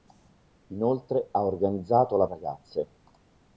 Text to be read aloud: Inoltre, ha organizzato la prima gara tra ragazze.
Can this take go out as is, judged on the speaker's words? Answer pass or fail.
fail